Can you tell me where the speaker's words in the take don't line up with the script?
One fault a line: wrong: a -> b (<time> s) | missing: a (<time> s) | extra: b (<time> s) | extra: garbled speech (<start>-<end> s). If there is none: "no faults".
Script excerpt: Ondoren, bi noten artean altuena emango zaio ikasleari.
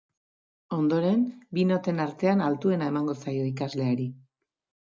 no faults